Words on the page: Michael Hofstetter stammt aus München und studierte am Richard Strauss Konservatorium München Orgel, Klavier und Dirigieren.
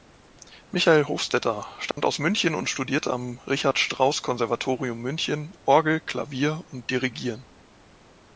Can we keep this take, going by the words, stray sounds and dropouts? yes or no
no